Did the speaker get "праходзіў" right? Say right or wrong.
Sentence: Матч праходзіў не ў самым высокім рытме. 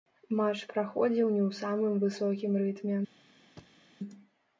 right